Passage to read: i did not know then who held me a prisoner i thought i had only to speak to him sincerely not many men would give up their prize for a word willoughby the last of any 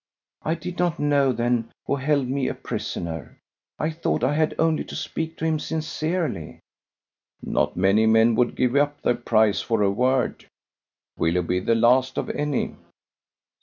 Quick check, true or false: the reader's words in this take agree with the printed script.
true